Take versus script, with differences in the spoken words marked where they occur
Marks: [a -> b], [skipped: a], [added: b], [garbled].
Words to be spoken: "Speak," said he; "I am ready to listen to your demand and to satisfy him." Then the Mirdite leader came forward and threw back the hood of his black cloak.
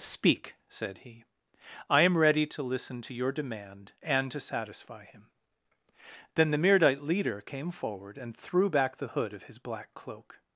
"Speak," said he; "I am ready to listen to your demand and to satisfy him." Then the Mirdite leader came forward and threw back the hood of his black cloak.